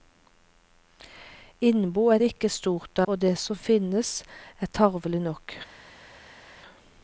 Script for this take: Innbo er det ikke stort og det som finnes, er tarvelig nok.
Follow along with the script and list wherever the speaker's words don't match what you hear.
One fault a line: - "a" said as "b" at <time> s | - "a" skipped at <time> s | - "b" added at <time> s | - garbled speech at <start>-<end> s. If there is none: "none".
none